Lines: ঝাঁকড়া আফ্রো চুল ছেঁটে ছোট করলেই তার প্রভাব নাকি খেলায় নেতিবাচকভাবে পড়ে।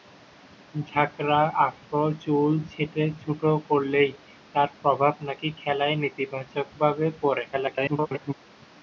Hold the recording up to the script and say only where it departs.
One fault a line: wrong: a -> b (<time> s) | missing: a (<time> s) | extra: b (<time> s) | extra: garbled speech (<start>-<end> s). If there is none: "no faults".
extra: garbled speech (7.5-8.3 s)